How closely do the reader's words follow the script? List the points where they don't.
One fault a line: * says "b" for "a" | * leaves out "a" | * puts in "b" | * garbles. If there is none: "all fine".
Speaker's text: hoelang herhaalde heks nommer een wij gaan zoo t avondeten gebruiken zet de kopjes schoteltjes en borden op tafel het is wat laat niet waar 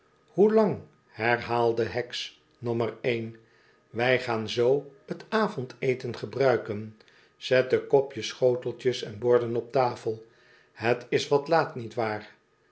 all fine